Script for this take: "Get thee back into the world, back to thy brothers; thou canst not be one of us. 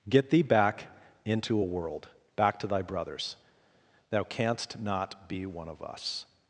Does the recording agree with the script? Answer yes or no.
no